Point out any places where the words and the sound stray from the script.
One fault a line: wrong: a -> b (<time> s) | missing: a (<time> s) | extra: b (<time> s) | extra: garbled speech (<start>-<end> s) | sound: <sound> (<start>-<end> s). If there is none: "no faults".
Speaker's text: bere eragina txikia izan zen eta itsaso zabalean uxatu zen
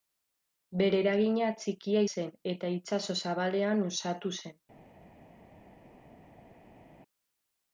missing: izan (2.0 s)